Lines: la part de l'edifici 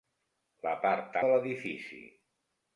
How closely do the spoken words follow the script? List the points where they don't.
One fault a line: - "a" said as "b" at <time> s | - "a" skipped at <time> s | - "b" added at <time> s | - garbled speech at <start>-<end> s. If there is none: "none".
none